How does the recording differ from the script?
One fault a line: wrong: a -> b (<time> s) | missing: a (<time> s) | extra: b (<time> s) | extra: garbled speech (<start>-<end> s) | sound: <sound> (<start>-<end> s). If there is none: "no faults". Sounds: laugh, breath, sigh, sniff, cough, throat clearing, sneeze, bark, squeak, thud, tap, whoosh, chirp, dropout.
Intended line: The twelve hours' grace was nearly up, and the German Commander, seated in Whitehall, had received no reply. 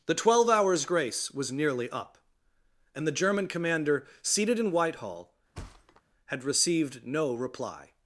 sound: thud (5.5-6.0 s)